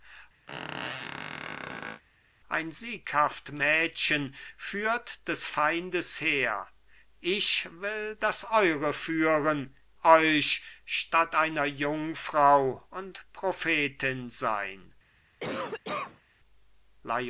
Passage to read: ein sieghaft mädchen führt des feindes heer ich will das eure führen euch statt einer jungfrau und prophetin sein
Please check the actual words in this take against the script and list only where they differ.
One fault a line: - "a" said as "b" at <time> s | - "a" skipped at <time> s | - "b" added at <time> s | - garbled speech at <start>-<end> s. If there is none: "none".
none